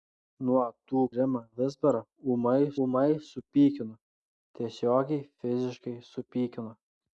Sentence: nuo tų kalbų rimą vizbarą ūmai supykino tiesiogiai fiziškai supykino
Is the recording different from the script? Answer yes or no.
yes